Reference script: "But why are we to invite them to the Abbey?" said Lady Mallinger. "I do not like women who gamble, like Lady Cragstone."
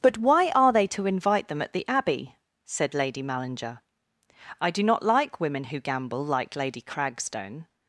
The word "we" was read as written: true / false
false